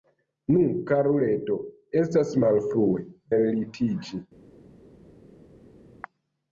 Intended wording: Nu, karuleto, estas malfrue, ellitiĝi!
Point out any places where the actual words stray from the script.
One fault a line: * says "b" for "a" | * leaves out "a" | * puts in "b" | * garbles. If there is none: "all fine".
all fine